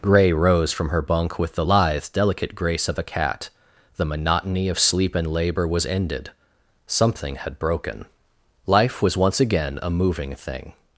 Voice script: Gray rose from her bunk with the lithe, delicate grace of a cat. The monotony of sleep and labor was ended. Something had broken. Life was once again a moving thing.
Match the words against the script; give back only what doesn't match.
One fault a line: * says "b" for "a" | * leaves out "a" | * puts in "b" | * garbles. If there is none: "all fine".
all fine